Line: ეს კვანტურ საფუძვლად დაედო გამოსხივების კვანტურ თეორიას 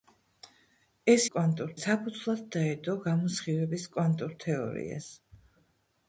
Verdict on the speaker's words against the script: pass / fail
pass